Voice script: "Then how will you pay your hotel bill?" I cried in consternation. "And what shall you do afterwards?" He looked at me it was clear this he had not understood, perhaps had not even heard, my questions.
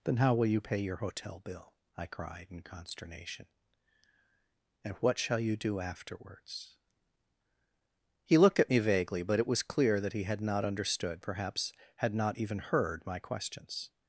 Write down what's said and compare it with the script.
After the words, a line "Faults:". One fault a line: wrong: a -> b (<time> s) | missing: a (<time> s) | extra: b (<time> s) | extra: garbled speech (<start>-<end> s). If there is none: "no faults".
"Then how will you pay your hotel bill?" I cried in consternation. "And what shall you do afterwards?" He looked at me vaguely, but it was clear that he had not understood, perhaps had not even heard, my questions.
Faults:
extra: vaguely but (8.8 s)
wrong: this -> that (10.0 s)